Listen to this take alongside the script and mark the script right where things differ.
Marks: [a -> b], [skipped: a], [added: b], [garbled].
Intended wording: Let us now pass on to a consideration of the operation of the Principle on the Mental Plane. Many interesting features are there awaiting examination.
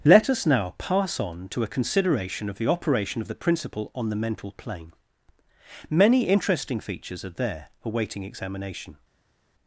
Let us now pass on to a consideration of the operation of the Principle on the Mental Plane. Many interesting features are there awaiting examination.